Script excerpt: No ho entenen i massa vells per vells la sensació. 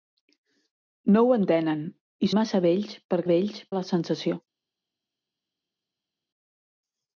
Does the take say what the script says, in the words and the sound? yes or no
yes